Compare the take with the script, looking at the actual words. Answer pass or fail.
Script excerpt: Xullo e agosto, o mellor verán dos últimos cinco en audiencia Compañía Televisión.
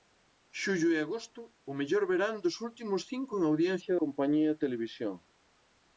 pass